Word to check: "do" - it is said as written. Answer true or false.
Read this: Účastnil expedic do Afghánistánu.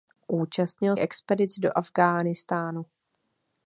true